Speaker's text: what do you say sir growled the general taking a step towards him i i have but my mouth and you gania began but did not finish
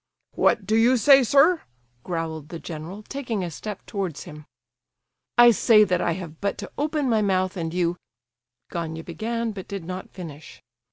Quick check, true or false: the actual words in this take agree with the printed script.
false